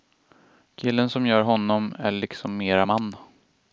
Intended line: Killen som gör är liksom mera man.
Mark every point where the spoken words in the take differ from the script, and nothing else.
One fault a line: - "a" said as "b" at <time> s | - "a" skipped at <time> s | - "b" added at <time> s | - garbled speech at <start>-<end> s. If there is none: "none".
- "honom" added at 1.4 s